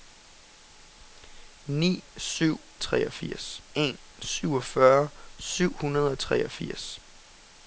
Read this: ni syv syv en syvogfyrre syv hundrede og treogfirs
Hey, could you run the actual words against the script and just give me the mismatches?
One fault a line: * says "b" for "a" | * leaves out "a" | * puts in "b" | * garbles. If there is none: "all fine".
* says "treogfirs" for "syv"